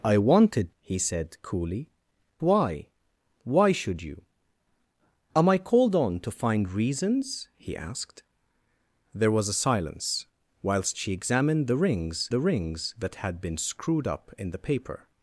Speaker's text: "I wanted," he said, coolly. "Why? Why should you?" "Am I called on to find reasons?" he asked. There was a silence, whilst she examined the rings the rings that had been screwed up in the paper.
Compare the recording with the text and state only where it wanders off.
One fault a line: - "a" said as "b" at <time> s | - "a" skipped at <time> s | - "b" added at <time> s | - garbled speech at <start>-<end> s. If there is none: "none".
none